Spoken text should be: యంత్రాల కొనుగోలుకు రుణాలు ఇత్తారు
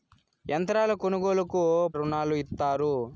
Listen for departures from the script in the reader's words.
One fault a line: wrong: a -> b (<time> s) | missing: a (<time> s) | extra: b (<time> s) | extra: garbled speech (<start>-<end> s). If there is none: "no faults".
no faults